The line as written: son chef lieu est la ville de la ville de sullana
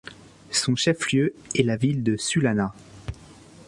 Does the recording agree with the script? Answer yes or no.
no